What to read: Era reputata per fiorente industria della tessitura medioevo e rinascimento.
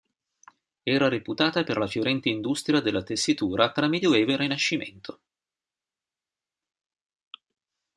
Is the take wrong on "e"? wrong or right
right